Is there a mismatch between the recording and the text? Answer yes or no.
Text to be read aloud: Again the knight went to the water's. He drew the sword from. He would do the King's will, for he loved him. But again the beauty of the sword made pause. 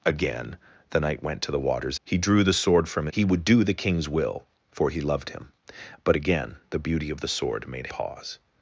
no